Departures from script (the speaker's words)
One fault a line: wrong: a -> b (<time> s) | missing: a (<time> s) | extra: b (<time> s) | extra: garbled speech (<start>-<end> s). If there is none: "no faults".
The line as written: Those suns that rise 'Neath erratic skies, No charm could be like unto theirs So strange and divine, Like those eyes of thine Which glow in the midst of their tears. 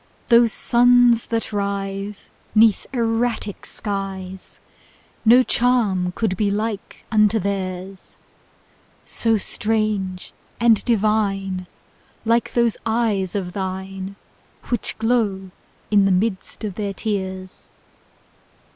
no faults